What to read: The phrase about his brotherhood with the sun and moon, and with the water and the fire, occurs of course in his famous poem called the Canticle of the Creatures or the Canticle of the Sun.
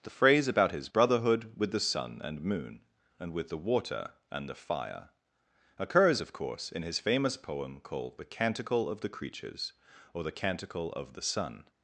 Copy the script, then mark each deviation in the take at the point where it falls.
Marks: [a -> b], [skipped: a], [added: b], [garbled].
The phrase about his brotherhood with the sun and moon, and with the water and the fire, occurs of course in his famous poem called the Canticle of the Creatures or the Canticle of the Sun.